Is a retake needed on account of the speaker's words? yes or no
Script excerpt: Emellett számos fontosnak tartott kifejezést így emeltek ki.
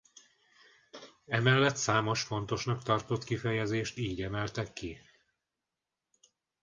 no